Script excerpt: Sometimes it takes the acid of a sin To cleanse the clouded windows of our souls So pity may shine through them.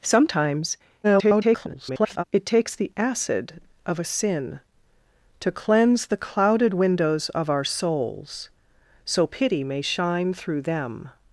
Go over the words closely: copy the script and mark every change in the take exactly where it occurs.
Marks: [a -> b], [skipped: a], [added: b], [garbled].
Sometimes [garbled] it takes the acid of a sin To cleanse the clouded windows of our souls So pity may shine through them.